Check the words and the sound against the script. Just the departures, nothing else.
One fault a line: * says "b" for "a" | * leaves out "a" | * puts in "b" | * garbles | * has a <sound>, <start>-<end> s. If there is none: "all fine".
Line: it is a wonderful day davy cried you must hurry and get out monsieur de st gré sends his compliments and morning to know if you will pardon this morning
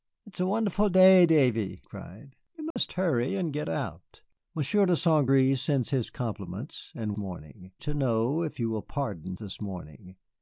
* has a dropout, 2.7-2.8 s